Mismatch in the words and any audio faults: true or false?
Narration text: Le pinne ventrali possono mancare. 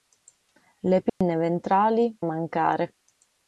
true